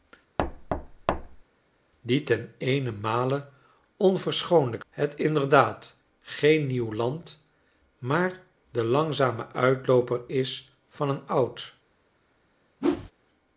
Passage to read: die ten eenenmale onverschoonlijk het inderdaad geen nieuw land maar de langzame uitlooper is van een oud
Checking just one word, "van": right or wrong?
right